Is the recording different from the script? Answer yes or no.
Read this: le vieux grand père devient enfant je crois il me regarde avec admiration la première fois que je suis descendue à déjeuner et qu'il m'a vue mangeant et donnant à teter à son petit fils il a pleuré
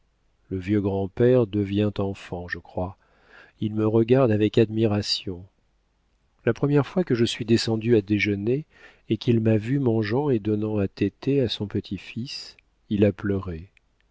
no